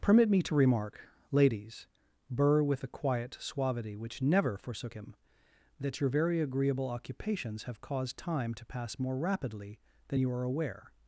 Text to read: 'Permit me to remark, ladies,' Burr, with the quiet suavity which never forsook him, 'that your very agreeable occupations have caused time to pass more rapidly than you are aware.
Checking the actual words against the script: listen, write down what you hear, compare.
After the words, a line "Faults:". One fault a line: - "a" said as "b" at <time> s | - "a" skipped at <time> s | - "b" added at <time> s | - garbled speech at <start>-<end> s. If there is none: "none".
'Permit me to remark, ladies,' Burr, with the quiet suavity which never forsook him, 'that your very agreeable occupations have caused time to pass more rapidly than you are aware.
Faults:
none